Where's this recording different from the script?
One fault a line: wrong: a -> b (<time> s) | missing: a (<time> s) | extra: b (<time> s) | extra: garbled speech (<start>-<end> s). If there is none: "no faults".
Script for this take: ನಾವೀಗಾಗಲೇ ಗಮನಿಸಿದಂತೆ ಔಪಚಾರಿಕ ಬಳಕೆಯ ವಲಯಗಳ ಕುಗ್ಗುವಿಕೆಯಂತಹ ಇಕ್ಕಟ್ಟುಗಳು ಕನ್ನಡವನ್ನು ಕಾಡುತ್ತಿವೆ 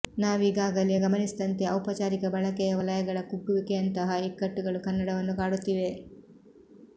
no faults